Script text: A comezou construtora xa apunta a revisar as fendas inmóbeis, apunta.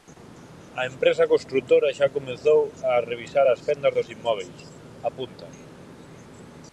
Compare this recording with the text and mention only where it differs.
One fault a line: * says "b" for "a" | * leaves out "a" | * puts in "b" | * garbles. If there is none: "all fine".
* says "empresa" for "comezou"
* says "comezou" for "apunta"
* puts in "dos"